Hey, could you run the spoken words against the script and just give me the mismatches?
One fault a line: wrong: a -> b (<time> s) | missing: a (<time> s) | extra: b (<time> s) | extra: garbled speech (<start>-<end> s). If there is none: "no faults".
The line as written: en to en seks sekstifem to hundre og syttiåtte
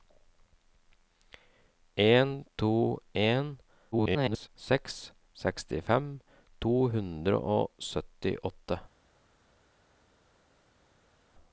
extra: garbled speech (3.9-4.5 s)